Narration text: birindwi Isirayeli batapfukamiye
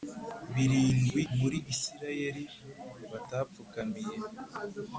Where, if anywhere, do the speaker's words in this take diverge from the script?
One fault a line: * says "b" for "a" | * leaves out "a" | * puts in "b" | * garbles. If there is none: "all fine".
* puts in "muri"